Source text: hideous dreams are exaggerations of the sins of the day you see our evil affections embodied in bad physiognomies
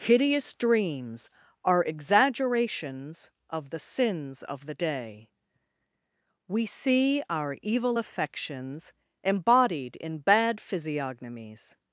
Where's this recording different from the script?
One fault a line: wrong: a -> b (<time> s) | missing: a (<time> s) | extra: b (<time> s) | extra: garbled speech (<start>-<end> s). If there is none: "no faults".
wrong: you -> we (6.5 s)